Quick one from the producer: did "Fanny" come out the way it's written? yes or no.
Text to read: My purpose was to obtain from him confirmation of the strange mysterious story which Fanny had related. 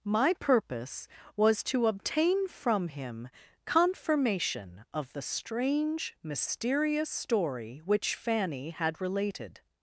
yes